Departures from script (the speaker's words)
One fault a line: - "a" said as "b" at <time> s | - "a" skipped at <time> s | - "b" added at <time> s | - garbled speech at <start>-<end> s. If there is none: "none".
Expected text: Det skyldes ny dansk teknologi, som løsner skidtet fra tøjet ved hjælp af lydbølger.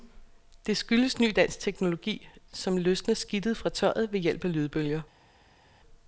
none